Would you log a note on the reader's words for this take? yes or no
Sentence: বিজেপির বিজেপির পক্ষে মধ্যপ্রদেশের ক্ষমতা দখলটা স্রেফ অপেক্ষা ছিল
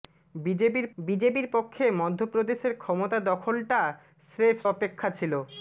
no